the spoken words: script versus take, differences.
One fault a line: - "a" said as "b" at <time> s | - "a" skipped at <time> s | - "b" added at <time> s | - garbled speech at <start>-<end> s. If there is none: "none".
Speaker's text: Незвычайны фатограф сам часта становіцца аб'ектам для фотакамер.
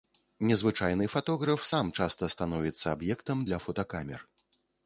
none